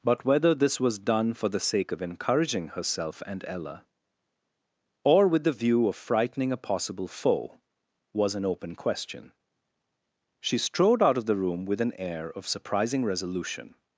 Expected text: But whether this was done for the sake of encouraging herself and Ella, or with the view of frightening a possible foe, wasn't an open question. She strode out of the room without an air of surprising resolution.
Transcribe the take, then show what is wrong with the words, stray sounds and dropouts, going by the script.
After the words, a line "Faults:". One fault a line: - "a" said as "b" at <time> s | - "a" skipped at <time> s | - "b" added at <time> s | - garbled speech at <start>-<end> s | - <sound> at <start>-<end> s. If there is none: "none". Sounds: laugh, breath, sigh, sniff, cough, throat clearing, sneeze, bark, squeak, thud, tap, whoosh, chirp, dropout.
But whether this was done for the sake of encouraging herself and Ella, or with the view of frightening a possible foe, was an open question. She strode out of the room with an air of surprising resolution.
Faults:
- "wasn't" said as "was" at 8.1 s
- "without" said as "with" at 11.6 s